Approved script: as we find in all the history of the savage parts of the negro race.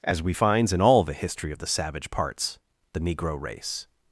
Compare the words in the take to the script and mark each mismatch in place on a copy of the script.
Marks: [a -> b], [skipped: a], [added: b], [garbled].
as we [find -> finds] in all the history of the savage parts [skipped: of] the negro race.